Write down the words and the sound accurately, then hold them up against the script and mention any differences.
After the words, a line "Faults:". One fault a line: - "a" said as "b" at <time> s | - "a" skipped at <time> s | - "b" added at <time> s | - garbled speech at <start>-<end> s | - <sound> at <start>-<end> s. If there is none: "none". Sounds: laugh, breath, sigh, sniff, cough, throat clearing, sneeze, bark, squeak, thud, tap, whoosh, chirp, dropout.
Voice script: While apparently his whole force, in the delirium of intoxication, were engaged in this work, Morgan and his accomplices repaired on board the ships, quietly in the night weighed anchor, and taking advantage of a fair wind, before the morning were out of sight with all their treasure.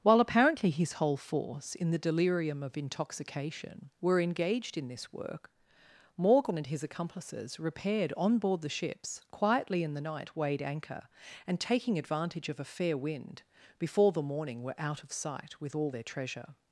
While apparently his whole force, in the delirium of intoxication, were engaged in this work, Morgan and his accomplices repaired on board the ships, quietly in the night weighed anchor, and taking advantage of a fair wind, before the morning were out of sight with all their treasure.
Faults:
none